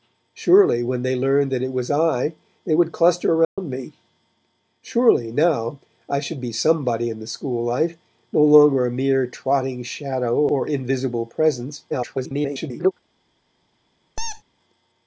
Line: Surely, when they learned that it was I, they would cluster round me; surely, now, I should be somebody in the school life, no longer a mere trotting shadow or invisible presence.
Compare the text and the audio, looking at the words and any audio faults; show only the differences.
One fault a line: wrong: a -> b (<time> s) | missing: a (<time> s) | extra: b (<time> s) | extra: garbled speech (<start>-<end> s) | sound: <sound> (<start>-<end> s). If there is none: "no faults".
sound: dropout (3.4-3.6 s)
extra: garbled speech (11.9-12.9 s)
sound: squeak (14.2-14.4 s)